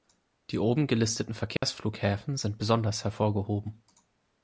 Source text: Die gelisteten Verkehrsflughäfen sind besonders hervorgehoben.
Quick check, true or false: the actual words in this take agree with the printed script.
false